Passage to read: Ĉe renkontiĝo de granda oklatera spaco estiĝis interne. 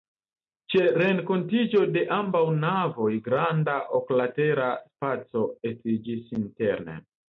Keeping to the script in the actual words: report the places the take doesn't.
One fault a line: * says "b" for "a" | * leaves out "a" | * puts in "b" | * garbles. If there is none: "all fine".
* puts in "ambaŭ navoj"